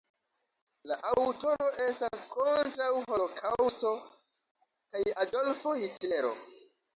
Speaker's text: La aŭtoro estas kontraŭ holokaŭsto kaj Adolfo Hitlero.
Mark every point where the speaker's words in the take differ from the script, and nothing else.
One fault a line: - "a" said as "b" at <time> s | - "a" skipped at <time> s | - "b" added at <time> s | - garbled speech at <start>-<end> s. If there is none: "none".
none